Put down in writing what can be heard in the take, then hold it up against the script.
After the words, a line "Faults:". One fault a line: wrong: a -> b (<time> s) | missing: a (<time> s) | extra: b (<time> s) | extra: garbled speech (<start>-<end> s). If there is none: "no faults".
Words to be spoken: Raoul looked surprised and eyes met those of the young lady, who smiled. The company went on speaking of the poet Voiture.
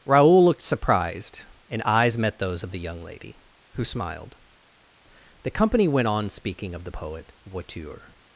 Raoul looked surprised and eyes met those of the young lady, who smiled. The company went on speaking of the poet Voiture.
Faults:
no faults